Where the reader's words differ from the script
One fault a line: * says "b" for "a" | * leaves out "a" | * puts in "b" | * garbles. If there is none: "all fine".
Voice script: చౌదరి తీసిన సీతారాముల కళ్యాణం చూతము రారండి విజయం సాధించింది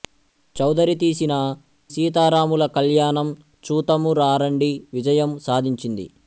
all fine